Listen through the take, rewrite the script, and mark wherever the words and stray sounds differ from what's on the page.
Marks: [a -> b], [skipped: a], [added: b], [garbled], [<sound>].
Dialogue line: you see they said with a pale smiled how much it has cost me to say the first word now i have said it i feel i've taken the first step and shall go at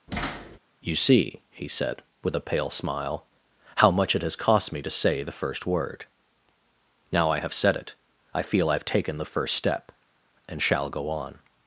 [thud] you see [they -> he] said with a pale [smiled -> smile] how much it has cost me to say the first word now i have said it i feel i've taken the first step and shall go [at -> on]